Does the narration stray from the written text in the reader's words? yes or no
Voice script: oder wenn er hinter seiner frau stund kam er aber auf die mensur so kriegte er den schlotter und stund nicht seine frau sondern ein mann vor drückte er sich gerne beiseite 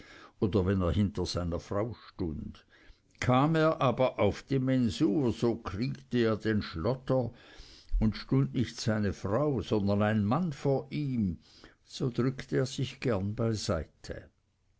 yes